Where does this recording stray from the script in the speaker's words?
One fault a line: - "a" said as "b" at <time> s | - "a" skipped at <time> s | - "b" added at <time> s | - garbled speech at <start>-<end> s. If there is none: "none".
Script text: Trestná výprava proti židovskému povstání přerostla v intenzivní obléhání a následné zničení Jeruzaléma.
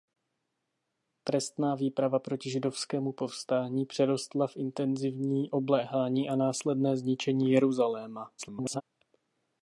- garbled speech at 8.4-8.8 s